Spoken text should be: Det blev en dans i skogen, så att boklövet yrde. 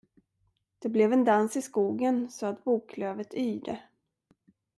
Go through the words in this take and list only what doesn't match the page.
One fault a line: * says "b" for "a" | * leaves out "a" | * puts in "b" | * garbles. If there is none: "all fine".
all fine